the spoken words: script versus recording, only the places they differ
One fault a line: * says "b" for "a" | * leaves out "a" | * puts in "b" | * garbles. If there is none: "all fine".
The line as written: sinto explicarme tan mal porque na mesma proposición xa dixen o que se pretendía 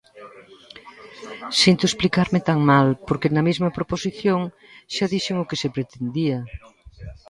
all fine